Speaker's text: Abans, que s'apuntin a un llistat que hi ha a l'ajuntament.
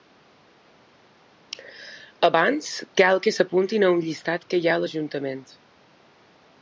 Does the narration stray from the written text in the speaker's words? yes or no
yes